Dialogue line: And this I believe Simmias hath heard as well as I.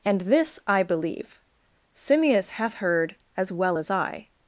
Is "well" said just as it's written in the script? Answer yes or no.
yes